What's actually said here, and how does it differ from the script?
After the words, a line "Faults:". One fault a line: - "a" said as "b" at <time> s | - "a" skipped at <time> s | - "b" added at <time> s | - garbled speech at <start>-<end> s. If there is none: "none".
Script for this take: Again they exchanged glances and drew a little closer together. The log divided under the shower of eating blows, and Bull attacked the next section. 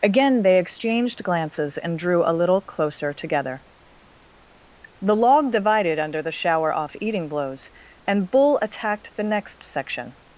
Again they exchanged glances and drew a little closer together. The log divided under the shower off eating blows, and Bull attacked the next section.
Faults:
- "of" said as "off" at 6.7 s